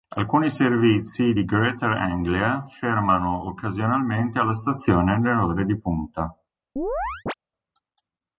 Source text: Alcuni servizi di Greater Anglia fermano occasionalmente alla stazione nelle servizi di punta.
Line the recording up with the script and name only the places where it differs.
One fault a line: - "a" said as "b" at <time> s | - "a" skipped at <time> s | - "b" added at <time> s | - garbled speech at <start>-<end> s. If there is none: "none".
- "servizi" said as "ore" at 5.4 s